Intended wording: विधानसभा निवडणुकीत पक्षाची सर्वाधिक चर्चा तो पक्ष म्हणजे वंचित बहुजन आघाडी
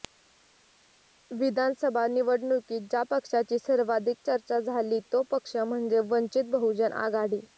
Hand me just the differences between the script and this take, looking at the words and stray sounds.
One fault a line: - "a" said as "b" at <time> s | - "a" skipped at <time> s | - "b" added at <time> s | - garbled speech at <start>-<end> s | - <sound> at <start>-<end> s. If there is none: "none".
- "ज्या" added at 2.9 s
- "झाली" added at 4.6 s